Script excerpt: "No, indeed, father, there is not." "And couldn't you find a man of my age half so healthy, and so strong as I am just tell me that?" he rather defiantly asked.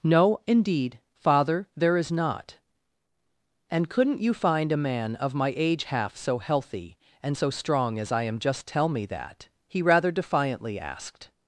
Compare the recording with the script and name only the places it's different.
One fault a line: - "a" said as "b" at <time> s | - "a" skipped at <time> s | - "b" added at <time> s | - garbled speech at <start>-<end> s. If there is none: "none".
none